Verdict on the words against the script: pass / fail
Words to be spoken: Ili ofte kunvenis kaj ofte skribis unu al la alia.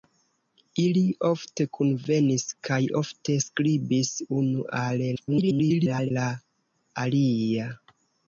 fail